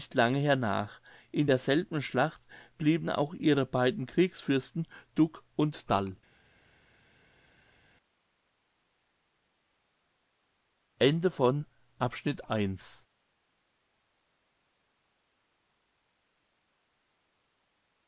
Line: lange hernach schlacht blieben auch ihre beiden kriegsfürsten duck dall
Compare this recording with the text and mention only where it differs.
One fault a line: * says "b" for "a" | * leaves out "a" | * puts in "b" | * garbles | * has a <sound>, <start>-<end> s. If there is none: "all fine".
* puts in "in derselben"
* puts in "und"